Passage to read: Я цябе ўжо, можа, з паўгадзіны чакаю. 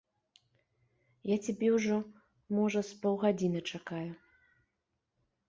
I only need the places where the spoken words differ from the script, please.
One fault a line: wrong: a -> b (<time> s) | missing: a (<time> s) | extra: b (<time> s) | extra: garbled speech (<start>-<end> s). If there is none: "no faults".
no faults